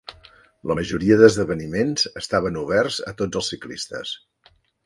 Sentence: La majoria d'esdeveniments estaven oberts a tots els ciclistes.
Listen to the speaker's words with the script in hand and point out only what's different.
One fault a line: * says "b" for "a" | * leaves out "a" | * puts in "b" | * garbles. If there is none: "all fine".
all fine